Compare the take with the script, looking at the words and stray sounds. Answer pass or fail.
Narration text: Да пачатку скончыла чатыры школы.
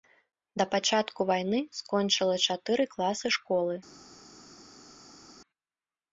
fail